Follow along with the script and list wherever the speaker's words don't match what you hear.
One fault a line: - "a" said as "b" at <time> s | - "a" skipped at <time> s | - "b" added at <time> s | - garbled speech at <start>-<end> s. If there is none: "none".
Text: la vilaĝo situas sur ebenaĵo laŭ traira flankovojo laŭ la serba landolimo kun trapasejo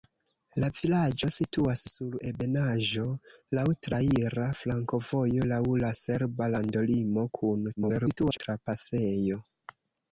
- garbled speech at 7.8-8.4 s